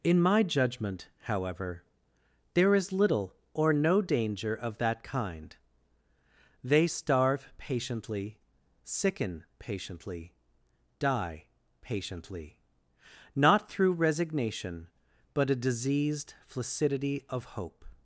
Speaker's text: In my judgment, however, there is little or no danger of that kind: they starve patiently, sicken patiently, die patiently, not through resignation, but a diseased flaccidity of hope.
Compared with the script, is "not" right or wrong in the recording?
right